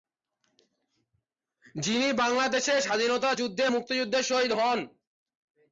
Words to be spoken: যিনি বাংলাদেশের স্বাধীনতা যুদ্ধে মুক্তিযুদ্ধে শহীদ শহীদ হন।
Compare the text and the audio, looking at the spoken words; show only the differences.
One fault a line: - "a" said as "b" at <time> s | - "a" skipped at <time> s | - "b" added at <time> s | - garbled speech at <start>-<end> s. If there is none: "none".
- "শহীদ" skipped at 4.5 s